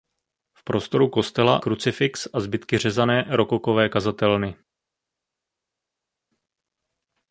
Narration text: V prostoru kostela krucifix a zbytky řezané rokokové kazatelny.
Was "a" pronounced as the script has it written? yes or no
yes